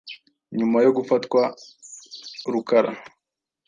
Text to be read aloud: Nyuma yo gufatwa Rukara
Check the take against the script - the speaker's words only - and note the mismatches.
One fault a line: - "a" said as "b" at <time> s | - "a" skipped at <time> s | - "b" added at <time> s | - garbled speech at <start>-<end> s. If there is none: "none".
none